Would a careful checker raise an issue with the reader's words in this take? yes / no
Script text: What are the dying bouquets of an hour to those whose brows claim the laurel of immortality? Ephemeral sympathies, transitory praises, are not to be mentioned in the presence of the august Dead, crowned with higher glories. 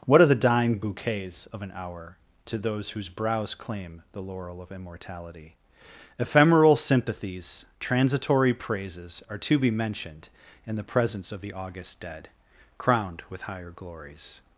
yes